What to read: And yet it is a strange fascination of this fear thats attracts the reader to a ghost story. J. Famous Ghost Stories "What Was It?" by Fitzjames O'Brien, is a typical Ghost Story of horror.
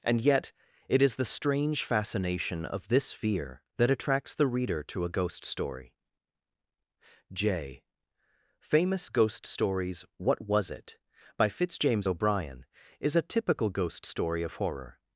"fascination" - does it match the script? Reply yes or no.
yes